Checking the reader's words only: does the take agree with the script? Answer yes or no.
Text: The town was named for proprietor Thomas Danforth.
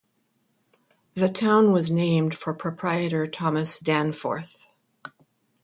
yes